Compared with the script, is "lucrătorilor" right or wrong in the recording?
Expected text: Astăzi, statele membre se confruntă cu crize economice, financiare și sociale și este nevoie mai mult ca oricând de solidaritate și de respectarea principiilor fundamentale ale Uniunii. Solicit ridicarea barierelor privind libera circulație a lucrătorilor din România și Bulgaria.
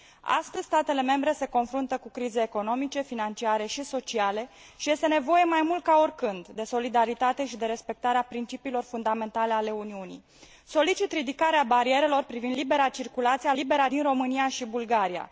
wrong